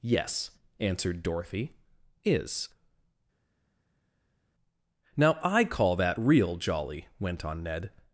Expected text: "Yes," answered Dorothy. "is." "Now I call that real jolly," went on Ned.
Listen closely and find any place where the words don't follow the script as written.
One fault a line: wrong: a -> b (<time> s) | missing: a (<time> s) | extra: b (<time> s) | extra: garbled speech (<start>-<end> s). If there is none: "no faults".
no faults